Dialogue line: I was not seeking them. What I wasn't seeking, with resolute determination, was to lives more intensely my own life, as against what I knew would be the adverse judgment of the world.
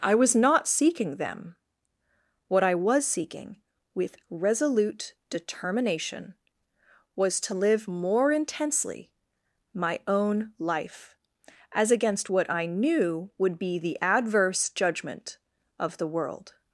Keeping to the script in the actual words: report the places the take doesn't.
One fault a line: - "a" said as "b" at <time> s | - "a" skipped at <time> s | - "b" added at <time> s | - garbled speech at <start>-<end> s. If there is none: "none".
- "wasn't" said as "was" at 2.8 s
- "lives" said as "live" at 7.5 s